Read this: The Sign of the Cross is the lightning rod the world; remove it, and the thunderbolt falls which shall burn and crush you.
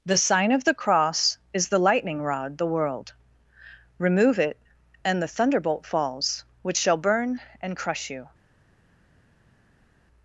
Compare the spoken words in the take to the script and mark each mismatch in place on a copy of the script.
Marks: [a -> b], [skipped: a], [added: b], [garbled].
The Sign of the Cross is the lightning rod the world; remove it, and the thunderbolt falls which shall burn and crush you.